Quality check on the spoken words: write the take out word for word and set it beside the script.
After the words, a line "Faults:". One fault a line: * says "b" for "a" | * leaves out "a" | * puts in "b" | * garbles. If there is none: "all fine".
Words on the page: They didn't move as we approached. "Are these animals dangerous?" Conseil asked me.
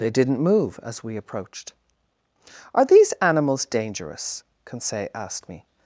They didn't move as we approached. "Are these animals dangerous?" Conseil asked me.
Faults:
all fine